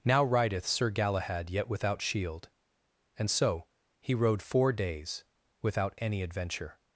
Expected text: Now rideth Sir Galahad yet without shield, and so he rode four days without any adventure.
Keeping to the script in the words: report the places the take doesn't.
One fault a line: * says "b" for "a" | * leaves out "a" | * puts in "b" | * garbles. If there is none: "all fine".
all fine